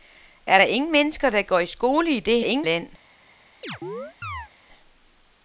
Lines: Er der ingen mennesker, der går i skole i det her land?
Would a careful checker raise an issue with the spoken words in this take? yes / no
yes